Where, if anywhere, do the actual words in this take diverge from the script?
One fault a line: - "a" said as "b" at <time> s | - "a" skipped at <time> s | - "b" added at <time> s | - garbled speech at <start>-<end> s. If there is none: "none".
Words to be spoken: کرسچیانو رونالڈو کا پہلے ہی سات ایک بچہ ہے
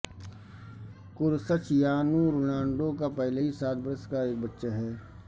- "برس کا" added at 3.8 s